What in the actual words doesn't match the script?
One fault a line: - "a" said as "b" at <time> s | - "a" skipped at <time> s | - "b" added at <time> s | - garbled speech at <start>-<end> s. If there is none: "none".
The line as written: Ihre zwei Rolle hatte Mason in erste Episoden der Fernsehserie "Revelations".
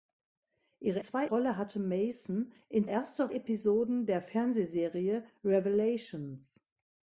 none